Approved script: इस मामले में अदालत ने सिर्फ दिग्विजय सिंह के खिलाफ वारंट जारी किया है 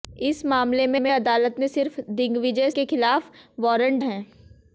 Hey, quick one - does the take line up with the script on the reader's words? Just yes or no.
no